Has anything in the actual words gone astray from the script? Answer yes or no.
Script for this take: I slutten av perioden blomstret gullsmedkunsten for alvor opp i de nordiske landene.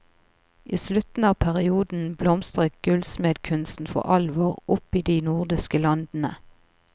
no